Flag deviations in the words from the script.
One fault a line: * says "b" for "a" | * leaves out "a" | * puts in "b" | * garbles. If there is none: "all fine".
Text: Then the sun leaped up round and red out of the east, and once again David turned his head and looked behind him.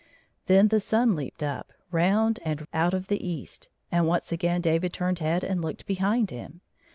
* leaves out "red"
* leaves out "his"